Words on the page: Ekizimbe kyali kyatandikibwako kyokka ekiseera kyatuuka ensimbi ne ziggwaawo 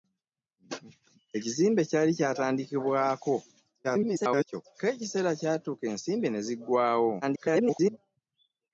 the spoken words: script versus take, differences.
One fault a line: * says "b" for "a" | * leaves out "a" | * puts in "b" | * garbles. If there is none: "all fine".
* garbles
* garbles